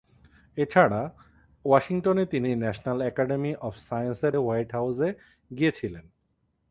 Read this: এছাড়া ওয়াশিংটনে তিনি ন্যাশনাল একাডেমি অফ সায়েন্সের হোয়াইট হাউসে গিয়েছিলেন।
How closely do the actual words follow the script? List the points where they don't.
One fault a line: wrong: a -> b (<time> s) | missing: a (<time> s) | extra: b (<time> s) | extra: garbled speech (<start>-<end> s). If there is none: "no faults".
no faults